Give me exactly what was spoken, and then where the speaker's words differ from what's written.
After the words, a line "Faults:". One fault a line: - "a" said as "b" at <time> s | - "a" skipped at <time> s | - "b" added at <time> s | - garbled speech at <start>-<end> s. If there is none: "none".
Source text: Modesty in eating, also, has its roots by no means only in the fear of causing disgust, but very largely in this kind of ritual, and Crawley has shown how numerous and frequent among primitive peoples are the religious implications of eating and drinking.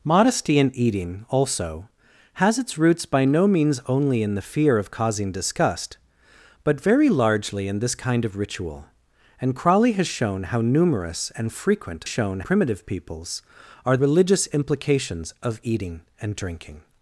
Modesty in eating, also, has its roots by no means only in the fear of causing disgust, but very largely in this kind of ritual, and Crawley has shown how numerous and frequent shown primitive peoples are religious implications of eating and drinking.
Faults:
- "among" said as "shown" at 12.0 s
- "the" skipped at 14.0 s